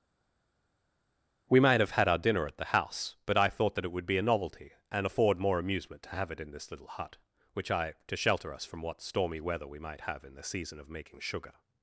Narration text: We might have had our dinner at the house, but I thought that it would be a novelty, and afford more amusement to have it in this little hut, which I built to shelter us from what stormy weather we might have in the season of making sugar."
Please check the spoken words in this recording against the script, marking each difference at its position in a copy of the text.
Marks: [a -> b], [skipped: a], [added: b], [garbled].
We might have had our dinner at the house, but I thought that it would be a novelty, and afford more amusement to have it in this little hut, which I [skipped: built] to shelter us from what stormy weather we might have in the season of making sugar."